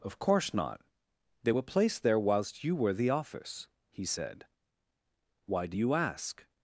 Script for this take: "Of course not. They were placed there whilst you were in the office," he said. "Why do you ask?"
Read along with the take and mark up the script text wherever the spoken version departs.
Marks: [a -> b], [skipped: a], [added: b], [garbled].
"Of course not. They were placed there whilst you were [skipped: in] the office," he said. "Why do you ask?"